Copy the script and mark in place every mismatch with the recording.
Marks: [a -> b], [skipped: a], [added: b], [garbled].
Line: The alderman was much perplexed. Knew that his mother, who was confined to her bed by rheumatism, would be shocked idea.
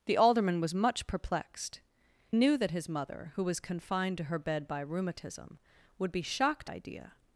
The alderman was much perplexed. Knew that his mother, who was confined to her bed by rheumatism, would be shocked idea.